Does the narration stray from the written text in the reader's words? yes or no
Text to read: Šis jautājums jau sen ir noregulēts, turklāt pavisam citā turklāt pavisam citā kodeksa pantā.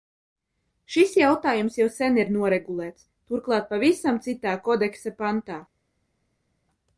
yes